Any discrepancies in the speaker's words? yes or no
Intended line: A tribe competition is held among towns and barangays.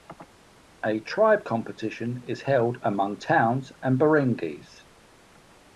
no